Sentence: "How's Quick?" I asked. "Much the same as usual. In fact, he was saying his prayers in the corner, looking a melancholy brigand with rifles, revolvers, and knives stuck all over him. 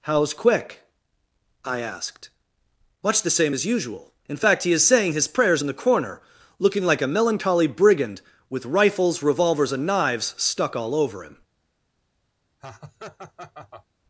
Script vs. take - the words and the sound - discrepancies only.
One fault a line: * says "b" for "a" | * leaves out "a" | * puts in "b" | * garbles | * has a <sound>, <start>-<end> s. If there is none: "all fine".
* says "is" for "was"
* puts in "like"
* has a laugh, 12.6-13.9 s